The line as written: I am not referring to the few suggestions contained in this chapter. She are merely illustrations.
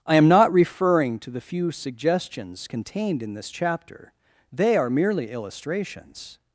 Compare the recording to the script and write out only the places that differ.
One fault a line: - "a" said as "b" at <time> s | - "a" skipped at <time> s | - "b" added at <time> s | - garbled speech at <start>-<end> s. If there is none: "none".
- "She" said as "They" at 4.5 s